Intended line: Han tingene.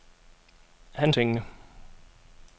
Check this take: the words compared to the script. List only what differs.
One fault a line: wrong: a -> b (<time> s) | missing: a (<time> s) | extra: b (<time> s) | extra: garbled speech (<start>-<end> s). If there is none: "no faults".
no faults